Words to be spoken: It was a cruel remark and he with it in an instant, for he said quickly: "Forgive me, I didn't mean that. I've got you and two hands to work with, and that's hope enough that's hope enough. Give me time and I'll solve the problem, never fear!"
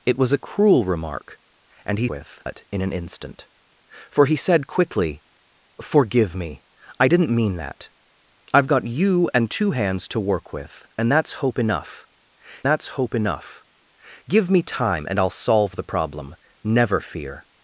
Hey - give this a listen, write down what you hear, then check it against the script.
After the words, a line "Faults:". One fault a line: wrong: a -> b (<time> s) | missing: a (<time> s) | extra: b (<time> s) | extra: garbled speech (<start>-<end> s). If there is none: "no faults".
It was a cruel remark and he with it in an instant, for he said quickly: "Forgive me, I didn't mean that. I've got you and two hands to work with, and that's hope enough that's hope enough. Give me time and I'll solve the problem, never fear!"
Faults:
no faults